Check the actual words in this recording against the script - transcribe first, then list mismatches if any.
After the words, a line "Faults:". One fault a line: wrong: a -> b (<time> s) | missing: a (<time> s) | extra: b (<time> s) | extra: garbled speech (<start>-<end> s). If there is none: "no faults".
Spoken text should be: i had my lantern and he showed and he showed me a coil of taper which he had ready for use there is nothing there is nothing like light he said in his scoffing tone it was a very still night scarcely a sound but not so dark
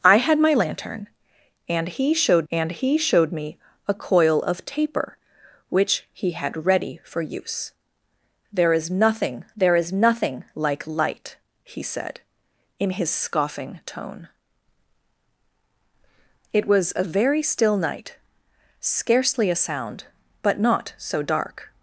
i had my lantern and he showed and he showed me a coil of taper which he had ready for use there is nothing there is nothing like light he said in his scoffing tone it was a very still night scarcely a sound but not so dark
Faults:
no faults